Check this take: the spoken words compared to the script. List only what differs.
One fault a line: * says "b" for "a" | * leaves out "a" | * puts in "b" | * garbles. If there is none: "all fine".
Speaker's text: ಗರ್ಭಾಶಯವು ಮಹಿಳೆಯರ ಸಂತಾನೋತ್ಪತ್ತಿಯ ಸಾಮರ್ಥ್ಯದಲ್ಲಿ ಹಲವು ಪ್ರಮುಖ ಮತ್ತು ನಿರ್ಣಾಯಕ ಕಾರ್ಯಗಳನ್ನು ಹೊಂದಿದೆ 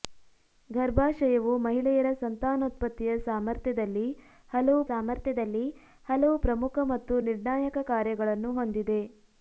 * puts in "ಸಾಮರ್ಥ್ಯದಲ್ಲಿ ಹಲವು"